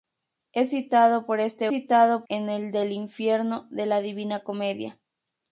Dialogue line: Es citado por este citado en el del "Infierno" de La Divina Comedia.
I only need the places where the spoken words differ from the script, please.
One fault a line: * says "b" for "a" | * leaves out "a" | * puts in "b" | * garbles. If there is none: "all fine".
all fine